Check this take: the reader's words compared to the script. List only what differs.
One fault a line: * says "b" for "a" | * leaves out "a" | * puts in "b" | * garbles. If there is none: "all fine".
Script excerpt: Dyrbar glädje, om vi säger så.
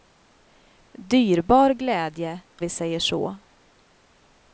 * leaves out "om"